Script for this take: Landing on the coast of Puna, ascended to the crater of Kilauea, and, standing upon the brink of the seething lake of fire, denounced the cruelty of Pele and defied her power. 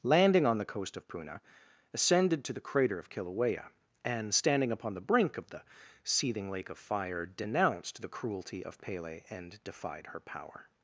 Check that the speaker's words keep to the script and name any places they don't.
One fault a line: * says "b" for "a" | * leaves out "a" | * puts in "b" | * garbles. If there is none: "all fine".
all fine